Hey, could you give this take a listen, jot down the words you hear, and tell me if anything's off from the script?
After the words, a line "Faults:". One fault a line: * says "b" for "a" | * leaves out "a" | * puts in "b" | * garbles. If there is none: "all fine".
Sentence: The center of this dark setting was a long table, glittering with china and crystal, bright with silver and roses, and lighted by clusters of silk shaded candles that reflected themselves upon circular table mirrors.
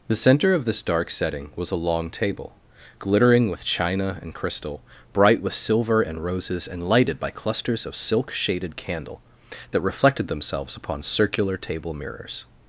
The center of this dark setting was a long table, glittering with china and crystal, bright with silver and roses, and lighted by clusters of silk shaded candle that reflected themselves upon circular table mirrors.
Faults:
* says "candle" for "candles"